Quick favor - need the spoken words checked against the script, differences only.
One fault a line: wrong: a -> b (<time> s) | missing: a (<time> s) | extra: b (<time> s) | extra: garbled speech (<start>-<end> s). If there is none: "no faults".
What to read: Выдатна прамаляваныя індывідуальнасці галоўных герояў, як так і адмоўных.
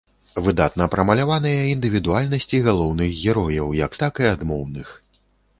no faults